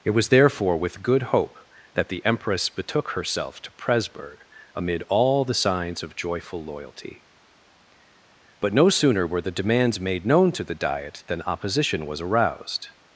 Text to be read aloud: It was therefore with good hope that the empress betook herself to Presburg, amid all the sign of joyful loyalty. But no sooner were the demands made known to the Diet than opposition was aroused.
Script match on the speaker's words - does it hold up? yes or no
no